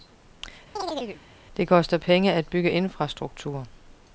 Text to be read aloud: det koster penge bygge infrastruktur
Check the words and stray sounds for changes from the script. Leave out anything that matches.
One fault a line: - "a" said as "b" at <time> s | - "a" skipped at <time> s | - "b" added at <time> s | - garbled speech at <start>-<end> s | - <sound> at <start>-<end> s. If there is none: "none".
- chirp at 0.8-1.2 s
- "at" added at 2.3 s